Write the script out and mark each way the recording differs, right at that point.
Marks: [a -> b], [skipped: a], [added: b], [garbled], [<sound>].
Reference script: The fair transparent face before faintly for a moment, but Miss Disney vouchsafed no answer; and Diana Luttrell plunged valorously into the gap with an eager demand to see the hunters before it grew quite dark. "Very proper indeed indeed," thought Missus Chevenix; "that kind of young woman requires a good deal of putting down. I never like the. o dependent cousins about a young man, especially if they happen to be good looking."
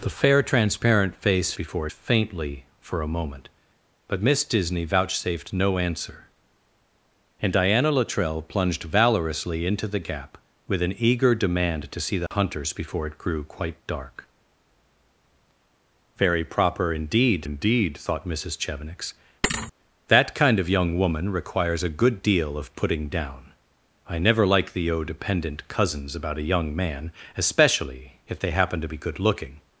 The fair transparent face before faintly for a moment, but Miss Disney vouchsafed no answer; and Diana Luttrell plunged valorously into the gap with an eager demand to see the [dropout] hunters before it grew quite dark. "Very proper indeed indeed," thought Missus Chevenix; [thud] "that kind of young woman requires a good deal of putting down. I never like the. o dependent cousins about a young man, especially if they happen to be good looking."